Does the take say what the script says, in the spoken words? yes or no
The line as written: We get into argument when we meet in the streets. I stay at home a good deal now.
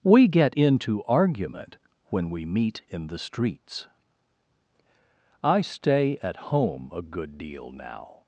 yes